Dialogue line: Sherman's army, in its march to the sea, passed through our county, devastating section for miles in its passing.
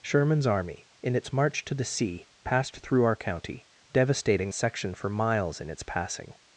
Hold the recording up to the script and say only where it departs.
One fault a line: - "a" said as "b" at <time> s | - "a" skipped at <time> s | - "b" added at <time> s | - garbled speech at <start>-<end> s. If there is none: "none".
none